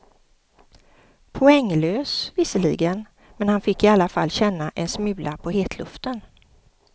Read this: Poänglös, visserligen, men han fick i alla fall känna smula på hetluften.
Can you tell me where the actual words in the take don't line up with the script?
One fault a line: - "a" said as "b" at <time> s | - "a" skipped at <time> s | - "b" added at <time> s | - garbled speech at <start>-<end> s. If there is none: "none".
- "en" added at 4.8 s